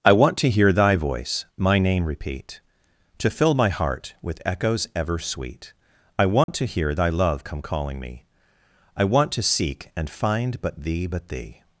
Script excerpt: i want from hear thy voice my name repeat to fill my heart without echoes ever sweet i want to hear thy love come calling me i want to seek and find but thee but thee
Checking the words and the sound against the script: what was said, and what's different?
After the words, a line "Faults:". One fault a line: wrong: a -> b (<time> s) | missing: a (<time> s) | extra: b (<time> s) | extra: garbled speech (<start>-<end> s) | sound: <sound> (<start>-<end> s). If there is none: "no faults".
i want to hear thy voice my name repeat to fill my heart with echoes ever sweet i want to hear thy love come calling me i want to seek and find but thee but thee
Faults:
wrong: from -> to (0.4 s)
wrong: without -> with (4.2 s)
sound: dropout (6.4-6.5 s)